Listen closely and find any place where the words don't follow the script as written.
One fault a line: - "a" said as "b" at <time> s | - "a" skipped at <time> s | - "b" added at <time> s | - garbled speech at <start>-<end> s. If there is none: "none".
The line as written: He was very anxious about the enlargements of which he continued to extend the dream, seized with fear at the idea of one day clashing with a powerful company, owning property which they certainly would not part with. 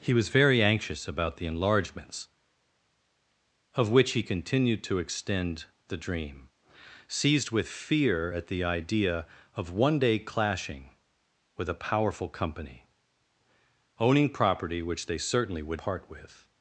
- "not" skipped at 15.8 s